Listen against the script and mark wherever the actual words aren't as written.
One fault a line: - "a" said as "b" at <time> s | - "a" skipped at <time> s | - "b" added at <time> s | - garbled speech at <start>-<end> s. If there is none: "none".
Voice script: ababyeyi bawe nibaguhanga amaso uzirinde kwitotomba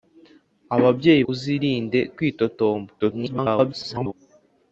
- "bawe nibaguhanga amaso" skipped at 1.2 s
- garbled speech at 3.0-4.1 s